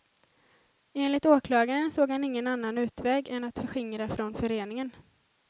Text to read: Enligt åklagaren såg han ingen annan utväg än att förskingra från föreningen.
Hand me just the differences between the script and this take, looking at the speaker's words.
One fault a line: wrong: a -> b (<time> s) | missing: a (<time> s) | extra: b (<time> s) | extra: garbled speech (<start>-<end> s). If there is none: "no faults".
no faults